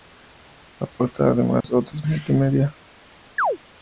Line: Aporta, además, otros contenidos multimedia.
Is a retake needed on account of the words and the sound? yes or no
yes